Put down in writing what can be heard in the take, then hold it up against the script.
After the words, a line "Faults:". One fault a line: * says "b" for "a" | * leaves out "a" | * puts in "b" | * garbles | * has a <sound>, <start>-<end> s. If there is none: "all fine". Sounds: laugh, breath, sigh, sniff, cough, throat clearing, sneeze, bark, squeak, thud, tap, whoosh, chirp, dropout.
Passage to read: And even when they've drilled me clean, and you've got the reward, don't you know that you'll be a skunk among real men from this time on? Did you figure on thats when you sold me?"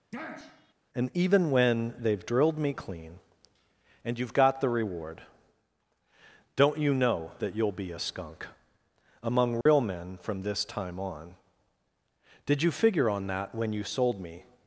And even when they've drilled me clean, and you've got the reward, don't you know that you'll be a skunk among real men from this time on? Did you figure on that when you sold me?"
Faults:
* has a sniff, 0.1-0.7 s
* has a dropout, 9.6-9.7 s
* says "that" for "thats"